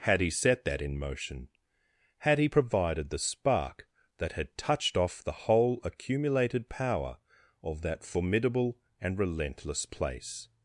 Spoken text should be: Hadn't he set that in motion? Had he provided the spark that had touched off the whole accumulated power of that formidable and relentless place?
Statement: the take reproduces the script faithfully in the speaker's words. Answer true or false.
false